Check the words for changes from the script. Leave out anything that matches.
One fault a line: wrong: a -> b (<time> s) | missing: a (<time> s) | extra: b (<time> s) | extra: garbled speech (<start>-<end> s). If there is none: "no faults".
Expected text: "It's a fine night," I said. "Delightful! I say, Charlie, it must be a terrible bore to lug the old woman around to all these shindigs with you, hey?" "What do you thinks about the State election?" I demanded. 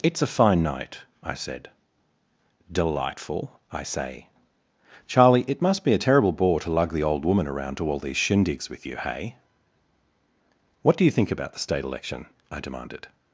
wrong: thinks -> think (11.1 s)